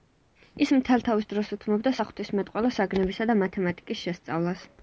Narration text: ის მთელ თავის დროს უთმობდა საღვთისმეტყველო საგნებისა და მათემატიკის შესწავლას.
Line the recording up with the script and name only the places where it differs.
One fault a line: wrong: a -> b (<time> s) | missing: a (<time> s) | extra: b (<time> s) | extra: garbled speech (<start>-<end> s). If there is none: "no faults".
no faults